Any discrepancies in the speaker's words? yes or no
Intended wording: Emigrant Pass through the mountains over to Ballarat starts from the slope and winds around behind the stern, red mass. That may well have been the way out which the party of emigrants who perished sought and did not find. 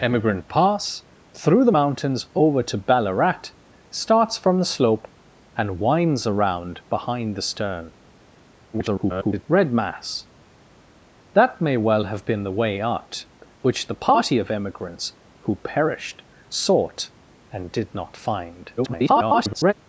yes